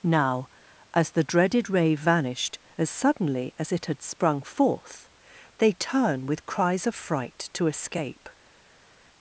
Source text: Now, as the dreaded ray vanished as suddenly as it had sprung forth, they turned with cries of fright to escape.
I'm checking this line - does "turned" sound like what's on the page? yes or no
no